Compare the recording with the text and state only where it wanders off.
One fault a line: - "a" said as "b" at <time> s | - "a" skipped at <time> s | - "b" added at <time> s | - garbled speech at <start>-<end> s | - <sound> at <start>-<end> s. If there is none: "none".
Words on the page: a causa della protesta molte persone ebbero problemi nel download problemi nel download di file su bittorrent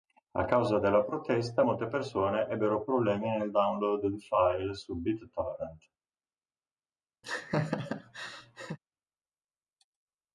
- "problemi nel download" skipped at 4.1 s
- laugh at 7.2-8.8 s